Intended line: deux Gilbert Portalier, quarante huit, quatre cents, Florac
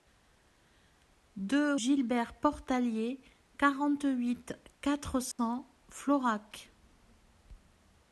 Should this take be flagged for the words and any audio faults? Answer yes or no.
yes